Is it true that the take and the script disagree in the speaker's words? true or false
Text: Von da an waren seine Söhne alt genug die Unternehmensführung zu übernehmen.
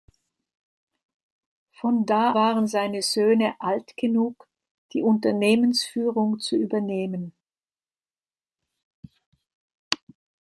true